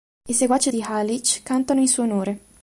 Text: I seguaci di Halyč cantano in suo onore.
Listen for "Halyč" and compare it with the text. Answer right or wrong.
right